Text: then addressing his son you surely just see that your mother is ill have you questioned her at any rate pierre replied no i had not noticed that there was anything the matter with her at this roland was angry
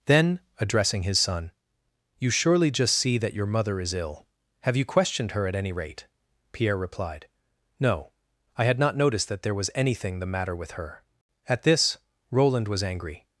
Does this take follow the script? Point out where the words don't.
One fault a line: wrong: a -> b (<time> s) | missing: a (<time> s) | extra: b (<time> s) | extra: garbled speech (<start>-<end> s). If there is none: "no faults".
no faults